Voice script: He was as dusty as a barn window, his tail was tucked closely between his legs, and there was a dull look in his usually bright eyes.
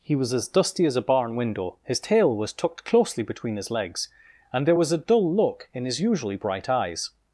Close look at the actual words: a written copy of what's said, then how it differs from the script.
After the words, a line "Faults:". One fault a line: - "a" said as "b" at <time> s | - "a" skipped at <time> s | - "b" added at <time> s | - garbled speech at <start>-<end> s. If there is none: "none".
He was as dusty as a barn window, his tail was tucked closely between his legs, and there was a dull look in his usually bright eyes.
Faults:
none